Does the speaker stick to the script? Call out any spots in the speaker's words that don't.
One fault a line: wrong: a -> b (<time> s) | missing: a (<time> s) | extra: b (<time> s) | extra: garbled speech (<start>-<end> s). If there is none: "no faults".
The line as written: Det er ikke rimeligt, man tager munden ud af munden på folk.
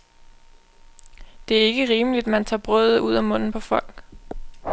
wrong: munden -> brødet (2.6 s)